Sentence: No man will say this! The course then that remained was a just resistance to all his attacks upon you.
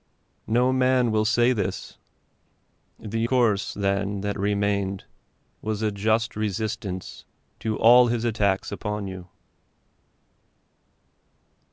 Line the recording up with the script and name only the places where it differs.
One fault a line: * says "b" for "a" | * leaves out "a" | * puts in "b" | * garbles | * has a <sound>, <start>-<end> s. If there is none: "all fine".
all fine